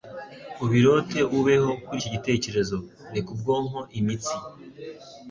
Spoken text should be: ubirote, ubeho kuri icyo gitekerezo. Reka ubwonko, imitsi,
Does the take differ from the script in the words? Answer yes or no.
no